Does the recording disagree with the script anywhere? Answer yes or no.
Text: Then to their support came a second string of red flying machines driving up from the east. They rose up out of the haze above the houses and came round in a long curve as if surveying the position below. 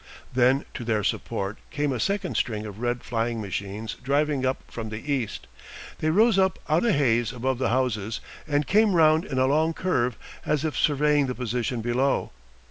yes